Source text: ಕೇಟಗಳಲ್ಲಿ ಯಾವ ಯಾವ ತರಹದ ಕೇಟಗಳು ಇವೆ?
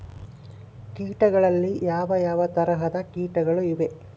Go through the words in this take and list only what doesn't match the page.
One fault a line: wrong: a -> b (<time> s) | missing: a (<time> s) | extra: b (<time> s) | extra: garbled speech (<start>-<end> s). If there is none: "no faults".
no faults